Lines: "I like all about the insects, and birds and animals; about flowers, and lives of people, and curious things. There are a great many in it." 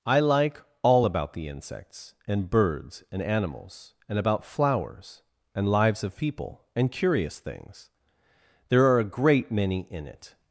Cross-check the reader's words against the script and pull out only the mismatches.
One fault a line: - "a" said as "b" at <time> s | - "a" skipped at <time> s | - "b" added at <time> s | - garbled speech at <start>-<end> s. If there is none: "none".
- "and" added at 4.1 s